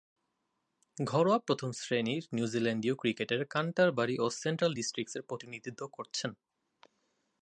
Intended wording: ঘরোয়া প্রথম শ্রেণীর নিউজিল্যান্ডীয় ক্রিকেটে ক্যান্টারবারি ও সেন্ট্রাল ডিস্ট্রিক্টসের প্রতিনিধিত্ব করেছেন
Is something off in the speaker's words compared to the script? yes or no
no